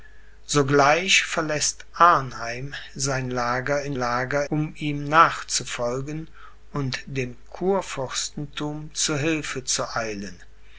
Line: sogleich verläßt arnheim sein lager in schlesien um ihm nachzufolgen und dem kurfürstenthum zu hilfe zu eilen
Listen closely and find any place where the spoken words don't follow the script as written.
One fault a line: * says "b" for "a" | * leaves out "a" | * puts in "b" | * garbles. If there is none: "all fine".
* says "lager" for "schlesien"